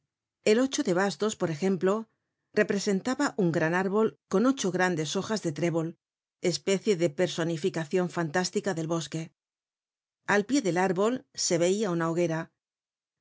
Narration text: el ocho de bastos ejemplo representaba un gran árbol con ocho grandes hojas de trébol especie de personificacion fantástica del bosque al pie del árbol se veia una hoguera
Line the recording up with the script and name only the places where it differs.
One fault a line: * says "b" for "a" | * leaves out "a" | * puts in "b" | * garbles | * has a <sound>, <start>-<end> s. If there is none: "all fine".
* puts in "por"